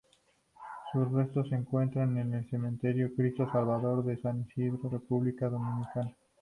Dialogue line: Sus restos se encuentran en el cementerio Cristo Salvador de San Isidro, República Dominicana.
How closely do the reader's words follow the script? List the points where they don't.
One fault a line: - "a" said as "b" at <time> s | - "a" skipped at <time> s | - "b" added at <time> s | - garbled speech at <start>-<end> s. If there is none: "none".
none